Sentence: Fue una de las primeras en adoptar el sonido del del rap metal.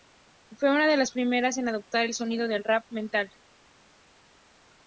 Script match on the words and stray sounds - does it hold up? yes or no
no